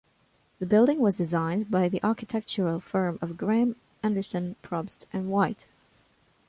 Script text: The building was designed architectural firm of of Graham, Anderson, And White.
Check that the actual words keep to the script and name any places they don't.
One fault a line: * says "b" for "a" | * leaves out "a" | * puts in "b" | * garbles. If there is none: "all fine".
* puts in "by the"
* leaves out "of"
* puts in "Probst"